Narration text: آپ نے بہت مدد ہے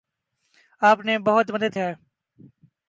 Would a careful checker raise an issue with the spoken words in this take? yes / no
no